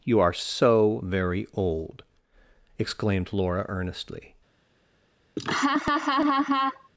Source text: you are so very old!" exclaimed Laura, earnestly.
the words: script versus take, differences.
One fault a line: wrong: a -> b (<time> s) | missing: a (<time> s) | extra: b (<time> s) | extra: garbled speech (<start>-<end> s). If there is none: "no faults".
no faults